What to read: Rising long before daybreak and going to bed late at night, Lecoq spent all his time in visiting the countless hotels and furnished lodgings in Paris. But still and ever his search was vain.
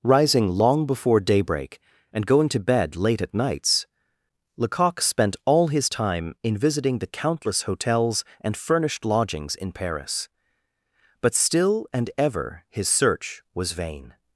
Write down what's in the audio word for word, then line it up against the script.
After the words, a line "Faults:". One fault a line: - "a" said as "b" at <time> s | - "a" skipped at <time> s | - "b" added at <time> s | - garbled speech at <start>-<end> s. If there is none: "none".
Rising long before daybreak and going to bed late at nights, Lecoq spent all his time in visiting the countless hotels and furnished lodgings in Paris. But still and ever his search was vain.
Faults:
- "night" said as "nights" at 3.3 s